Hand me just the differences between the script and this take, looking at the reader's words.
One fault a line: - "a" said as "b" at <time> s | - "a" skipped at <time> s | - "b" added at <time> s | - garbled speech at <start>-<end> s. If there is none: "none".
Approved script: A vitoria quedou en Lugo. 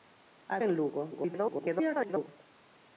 - "vitoria quedou" skipped at 0.6 s
- garbled speech at 1.1-2.3 s